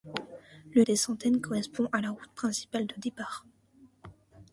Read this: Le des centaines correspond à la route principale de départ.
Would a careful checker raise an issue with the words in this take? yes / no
no